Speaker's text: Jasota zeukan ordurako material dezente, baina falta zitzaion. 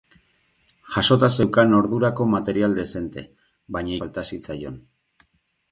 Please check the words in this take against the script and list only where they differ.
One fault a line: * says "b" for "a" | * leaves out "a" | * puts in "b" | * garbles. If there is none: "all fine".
all fine